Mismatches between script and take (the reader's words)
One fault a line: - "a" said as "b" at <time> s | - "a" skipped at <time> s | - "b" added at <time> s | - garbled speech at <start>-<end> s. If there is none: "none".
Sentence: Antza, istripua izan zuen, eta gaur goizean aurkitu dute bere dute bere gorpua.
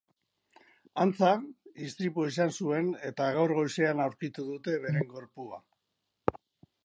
- "dute bere" skipped at 5.1 s